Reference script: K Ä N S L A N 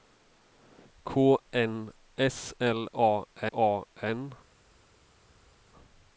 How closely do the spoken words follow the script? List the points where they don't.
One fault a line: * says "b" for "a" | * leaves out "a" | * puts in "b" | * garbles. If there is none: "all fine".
* leaves out "Ä"
* puts in "A"